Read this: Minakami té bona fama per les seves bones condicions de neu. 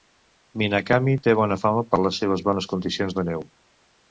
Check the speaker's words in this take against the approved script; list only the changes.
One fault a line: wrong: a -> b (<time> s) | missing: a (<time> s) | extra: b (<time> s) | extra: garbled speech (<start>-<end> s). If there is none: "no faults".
no faults